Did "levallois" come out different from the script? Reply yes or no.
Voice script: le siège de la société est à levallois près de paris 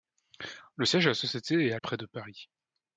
yes